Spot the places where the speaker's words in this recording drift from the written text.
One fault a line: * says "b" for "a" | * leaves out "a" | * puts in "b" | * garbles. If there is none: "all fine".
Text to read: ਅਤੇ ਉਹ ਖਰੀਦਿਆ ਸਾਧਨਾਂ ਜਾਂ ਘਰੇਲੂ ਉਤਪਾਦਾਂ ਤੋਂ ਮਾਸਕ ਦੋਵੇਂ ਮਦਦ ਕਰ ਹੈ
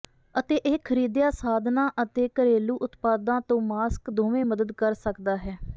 * says "ਇਹ" for "ਉਹ"
* says "ਅਤੇ" for "ਜਾਂ"
* puts in "ਸਕਦਾ"